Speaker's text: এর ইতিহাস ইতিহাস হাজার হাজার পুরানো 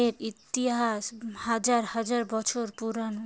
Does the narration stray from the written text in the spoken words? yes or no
yes